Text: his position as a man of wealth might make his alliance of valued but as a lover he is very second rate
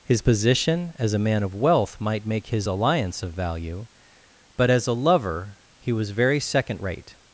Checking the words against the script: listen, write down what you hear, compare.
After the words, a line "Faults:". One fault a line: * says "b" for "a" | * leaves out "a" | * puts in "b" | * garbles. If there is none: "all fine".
his position as a man of wealth might make his alliance of value but as a lover he was very second rate
Faults:
* says "value" for "valued"
* says "was" for "is"